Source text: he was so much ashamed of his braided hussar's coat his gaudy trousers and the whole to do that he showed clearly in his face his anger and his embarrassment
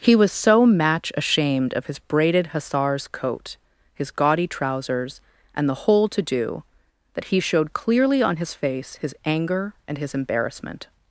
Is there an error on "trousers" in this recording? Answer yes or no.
no